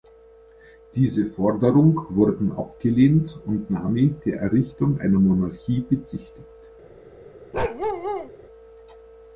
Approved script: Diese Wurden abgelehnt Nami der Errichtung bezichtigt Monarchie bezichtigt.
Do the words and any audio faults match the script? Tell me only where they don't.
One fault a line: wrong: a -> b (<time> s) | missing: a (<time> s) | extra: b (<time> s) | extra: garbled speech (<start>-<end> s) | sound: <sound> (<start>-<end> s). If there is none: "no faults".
extra: Forderung (1.3 s)
extra: und (3.5 s)
wrong: bezichtigt -> einer (5.0 s)
sound: bark (7.5-8.3 s)